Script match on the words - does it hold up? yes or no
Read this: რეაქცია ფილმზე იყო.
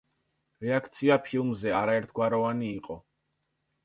no